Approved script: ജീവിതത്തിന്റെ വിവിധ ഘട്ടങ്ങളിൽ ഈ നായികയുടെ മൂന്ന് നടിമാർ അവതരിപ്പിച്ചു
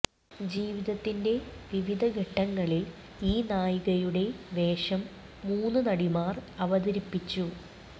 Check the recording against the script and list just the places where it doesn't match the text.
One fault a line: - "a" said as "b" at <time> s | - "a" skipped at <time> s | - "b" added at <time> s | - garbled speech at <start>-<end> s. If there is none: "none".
- "വേഷം" added at 4.5 s